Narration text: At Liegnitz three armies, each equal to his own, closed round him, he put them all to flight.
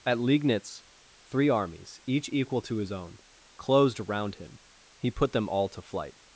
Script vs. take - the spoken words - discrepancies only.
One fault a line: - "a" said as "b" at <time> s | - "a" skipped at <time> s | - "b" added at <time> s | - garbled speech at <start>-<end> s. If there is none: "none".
none